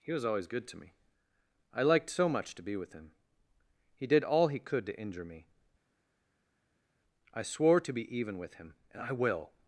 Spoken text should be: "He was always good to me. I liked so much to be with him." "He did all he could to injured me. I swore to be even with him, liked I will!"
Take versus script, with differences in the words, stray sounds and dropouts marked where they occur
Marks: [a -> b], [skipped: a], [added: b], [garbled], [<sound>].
"He was always good to me. I liked so much to be with him." "He did all he could to [injured -> injure] me. I swore to be even with him, [liked -> and] I will!"